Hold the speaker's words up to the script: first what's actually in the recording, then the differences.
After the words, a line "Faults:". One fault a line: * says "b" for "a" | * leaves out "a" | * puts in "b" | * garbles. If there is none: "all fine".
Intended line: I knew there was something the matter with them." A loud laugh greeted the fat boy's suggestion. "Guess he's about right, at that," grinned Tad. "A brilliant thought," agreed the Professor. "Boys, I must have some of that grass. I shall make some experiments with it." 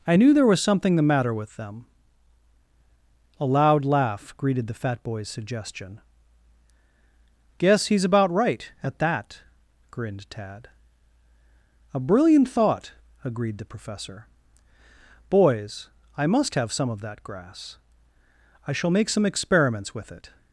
I knew there was something the matter with them." A loud laugh greeted the fat boy's suggestion. "Guess he's about right, at that," grinned Tad. "A brilliant thought," agreed the Professor. "Boys, I must have some of that grass. I shall make some experiments with it."
Faults:
all fine